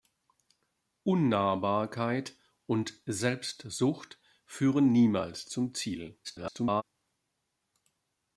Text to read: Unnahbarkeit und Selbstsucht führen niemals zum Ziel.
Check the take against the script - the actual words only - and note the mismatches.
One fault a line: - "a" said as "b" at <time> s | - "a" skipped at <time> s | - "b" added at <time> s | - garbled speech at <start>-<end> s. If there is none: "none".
- garbled speech at 6.2-6.8 s